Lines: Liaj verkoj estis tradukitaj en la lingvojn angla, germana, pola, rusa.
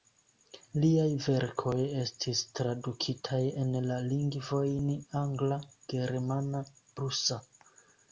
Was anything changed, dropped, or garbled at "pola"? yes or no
yes